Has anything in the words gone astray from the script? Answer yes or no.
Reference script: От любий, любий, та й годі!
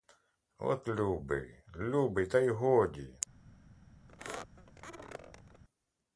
no